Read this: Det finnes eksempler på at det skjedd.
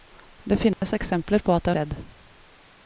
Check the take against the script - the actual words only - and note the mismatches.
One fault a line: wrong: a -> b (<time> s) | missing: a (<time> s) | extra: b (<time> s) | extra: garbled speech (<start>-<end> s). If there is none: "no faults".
no faults